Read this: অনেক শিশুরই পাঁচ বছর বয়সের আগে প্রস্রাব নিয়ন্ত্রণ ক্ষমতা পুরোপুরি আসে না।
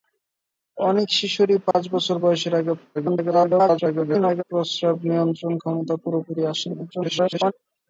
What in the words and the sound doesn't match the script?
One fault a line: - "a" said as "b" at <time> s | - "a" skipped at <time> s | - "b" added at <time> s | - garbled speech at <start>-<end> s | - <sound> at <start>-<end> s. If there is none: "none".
- dropout at 1.7-1.7 s
- garbled speech at 2.9-4.4 s
- garbled speech at 6.9-7.5 s